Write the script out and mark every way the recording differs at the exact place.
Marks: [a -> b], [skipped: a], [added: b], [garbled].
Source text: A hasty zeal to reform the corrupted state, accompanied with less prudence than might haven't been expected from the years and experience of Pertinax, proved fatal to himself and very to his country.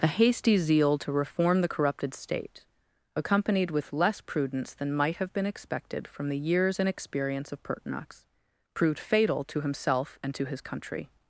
A hasty zeal to reform the corrupted state, accompanied with less prudence than might [haven't -> have] been expected from the years and experience of Pertinax, proved fatal to himself and [skipped: very] to his country.